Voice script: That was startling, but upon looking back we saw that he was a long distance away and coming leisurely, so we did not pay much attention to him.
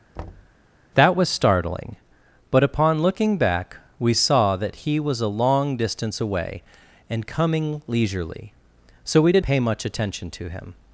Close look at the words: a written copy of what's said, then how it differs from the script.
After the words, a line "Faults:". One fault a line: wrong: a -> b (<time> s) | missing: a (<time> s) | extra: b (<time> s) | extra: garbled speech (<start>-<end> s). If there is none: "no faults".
That was startling, but upon looking back we saw that he was a long distance away and coming leisurely, so we did pay much attention to him.
Faults:
missing: not (9.4 s)